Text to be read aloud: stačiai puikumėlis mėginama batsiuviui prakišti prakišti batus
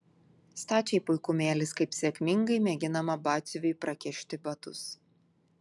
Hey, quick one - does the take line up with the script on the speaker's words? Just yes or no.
no